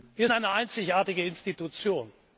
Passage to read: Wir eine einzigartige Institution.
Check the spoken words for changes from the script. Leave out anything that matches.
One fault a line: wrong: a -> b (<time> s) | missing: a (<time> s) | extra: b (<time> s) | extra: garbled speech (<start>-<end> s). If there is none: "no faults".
no faults